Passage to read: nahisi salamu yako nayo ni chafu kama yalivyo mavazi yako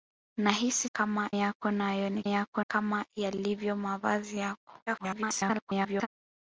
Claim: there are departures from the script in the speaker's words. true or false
true